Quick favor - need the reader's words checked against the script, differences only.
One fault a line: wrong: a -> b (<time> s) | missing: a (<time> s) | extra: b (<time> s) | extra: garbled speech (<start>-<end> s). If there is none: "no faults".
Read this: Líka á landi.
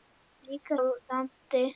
no faults